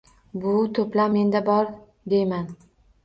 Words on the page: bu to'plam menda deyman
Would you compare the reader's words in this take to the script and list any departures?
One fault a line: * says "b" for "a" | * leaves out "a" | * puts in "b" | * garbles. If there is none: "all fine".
* puts in "bor"